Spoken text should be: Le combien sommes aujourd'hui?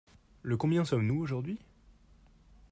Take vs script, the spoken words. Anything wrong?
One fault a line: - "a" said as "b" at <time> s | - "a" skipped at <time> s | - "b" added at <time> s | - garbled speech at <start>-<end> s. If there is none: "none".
- "nous" added at 1.1 s